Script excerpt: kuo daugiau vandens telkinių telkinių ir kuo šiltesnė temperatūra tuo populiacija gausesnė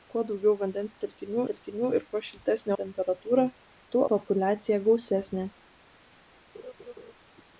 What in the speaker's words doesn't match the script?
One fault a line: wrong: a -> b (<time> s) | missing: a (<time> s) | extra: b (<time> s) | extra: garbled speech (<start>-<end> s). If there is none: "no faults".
no faults